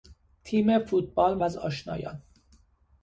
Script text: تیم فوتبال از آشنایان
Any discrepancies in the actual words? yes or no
no